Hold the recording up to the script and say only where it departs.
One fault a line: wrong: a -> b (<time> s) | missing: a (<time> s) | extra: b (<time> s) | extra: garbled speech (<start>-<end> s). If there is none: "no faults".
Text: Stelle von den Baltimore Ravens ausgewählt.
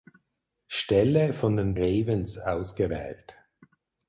missing: Baltimore (1.8 s)